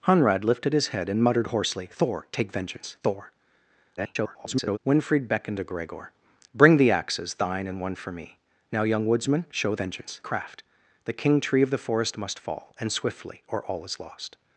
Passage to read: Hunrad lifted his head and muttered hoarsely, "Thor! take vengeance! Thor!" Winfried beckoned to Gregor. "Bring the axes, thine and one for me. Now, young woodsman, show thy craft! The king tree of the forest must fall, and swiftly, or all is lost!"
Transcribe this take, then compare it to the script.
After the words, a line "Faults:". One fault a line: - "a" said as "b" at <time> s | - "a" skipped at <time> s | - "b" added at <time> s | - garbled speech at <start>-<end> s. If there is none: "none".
Hunrad lifted his head and muttered hoarsely, "Thor! take vengeance! Thor!" [garbled] Winfried beckoned to Gregor. "Bring the axes, thine and one for me. Now, young woodsman, show vengeance craft! The king tree of the forest must fall, and swiftly, or all is lost!"
Faults:
- garbled speech at 4.0-4.8 s
- "thy" said as "vengeance" at 9.8 s